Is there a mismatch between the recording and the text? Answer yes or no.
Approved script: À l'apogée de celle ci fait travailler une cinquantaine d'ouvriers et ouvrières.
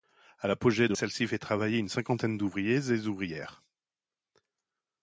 no